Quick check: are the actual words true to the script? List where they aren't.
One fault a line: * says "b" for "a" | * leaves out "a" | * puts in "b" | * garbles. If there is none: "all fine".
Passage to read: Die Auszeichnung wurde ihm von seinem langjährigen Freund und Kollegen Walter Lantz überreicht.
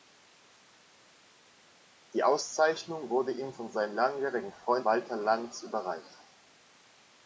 * leaves out "und Kollegen"